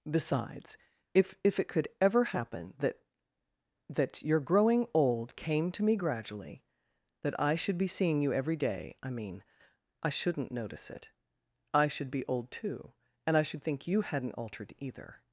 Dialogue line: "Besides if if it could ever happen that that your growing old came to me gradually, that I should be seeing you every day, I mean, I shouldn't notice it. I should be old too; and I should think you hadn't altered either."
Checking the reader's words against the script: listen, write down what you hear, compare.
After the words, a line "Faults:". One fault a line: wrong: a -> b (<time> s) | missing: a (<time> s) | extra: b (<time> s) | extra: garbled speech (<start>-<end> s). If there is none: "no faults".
"Besides if if it could ever happen that that your growing old came to me gradually, that I should be seeing you every day, I mean, I shouldn't notice it. I should be old too; and I should think you hadn't altered either."
Faults:
no faults